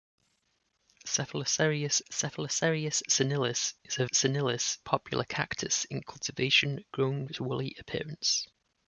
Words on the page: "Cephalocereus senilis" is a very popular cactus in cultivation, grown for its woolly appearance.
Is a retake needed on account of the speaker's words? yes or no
yes